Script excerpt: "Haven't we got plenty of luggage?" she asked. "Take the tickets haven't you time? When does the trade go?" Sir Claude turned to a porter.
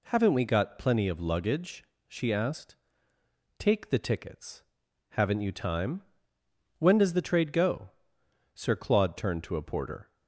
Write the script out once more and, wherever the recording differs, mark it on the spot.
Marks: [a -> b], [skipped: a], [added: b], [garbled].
"Haven't we got plenty of luggage?" she asked. "Take the tickets haven't you time? When does the trade go?" Sir Claude turned to a porter.